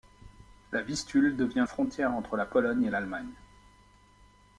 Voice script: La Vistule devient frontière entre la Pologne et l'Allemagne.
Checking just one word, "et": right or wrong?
right